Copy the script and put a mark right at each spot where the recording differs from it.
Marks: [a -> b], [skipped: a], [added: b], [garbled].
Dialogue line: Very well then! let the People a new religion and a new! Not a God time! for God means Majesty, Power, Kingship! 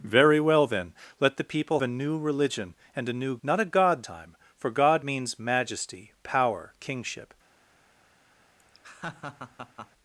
Very well then! let the People a new religion and a new! Not a God time! for God means Majesty, Power, Kingship!